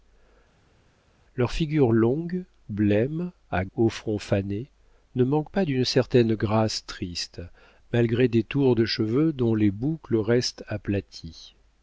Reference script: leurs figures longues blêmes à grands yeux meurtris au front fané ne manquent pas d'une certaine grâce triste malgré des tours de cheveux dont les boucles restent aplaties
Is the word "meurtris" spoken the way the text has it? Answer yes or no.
no